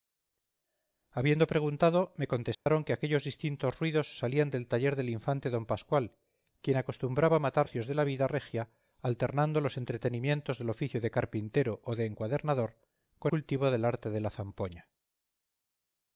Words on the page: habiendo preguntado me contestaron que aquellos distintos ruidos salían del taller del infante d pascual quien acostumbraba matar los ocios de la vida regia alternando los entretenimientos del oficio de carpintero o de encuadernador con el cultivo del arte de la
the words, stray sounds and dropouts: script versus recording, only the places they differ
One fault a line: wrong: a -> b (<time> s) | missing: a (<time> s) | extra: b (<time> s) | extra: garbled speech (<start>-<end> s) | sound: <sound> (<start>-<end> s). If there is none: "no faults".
sound: dropout (2.5-2.7 s)
missing: los (7.7 s)
missing: el (13.3 s)